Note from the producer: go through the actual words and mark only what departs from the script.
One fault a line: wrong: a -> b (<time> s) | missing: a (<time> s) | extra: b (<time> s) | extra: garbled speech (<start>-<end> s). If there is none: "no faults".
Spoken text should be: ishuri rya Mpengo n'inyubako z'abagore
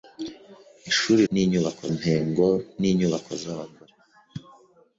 wrong: rya -> n'inyubako (1.3 s)